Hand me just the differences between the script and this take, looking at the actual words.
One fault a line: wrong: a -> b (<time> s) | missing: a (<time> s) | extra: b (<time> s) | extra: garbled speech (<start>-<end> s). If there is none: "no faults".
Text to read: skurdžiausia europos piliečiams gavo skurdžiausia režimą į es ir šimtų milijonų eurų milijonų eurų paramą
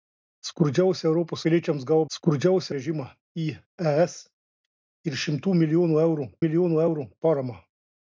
no faults